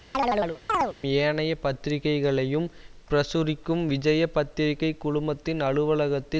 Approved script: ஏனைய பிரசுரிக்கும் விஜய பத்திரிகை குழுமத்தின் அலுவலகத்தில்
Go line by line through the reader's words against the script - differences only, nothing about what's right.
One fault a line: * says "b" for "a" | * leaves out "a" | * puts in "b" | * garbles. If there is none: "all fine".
* puts in "பத்திரிகைகளையும்"